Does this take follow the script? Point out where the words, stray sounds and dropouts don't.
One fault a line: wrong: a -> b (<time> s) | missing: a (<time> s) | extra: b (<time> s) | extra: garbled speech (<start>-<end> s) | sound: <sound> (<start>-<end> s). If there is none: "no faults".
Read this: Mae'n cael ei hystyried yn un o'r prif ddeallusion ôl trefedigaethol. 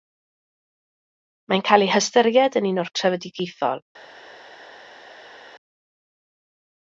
missing: prif ddeallusion ôl (2.9 s)